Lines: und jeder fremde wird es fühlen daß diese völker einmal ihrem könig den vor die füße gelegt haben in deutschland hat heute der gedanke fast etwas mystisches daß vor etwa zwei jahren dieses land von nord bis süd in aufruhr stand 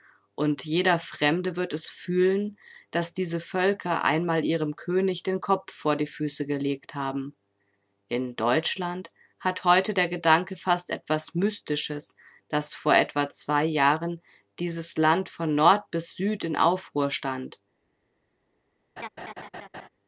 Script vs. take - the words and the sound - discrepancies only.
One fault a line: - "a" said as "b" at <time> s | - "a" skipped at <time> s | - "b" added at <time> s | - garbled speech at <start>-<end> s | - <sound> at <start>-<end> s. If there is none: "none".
- "kopf" added at 5.4 s
- laugh at 19.0-19.9 s